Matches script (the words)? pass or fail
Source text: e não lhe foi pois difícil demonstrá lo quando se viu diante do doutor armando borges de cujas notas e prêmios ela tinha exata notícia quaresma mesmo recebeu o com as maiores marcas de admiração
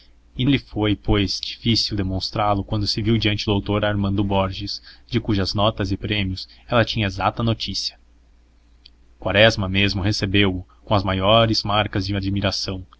fail